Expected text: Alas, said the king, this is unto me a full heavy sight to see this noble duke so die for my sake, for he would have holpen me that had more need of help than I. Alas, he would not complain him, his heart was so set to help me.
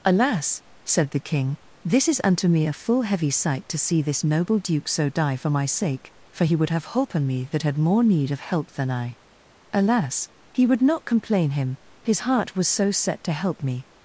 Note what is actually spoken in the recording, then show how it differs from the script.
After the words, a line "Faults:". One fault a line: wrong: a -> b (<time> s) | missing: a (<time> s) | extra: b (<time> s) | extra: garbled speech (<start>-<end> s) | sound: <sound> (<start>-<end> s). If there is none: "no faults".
Alas, said the king, this is unto me a full heavy sight to see this noble duke so die for my sake, for he would have holpen me that had more need of help than I. Alas, he would not complain him, his heart was so set to help me.
Faults:
no faults